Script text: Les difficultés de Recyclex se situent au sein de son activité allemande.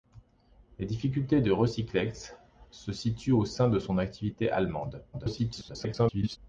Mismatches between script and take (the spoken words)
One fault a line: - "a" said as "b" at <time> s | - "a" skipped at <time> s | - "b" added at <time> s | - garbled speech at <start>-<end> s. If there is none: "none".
- garbled speech at 5.1-6.4 s